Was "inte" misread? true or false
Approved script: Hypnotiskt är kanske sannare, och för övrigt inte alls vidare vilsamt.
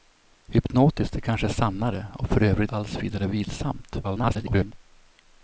true